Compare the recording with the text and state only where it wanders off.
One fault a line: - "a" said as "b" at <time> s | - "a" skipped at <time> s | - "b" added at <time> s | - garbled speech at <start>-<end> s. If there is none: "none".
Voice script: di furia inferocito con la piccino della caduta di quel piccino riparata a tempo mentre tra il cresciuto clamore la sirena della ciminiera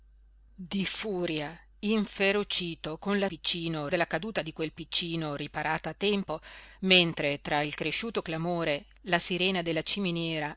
none